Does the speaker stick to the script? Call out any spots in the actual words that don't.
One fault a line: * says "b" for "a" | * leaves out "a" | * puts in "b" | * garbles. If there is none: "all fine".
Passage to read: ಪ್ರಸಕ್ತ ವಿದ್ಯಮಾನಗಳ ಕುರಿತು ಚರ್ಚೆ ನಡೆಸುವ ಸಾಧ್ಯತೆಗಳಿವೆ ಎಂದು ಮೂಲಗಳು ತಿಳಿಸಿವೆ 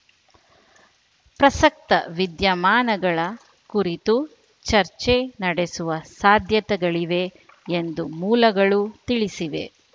all fine